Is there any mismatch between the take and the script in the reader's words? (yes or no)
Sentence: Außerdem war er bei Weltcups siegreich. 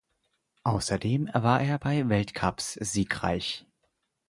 no